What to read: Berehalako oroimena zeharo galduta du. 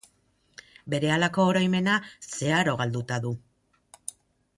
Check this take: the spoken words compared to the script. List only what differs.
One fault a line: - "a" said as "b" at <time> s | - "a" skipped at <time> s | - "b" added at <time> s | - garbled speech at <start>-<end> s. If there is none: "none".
none